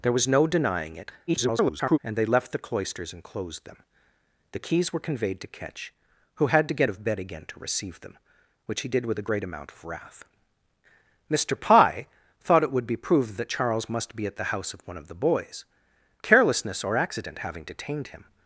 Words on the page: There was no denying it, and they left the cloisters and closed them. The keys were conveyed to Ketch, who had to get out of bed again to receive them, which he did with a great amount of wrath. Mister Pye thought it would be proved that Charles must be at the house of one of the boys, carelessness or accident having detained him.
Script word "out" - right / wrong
wrong